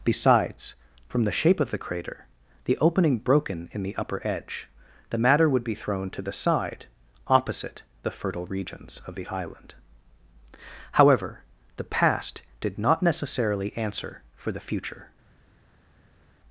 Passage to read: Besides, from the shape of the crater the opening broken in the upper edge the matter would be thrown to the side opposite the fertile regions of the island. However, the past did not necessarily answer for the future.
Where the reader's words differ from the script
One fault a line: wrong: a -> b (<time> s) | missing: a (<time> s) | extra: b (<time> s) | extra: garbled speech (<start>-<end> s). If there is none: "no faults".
no faults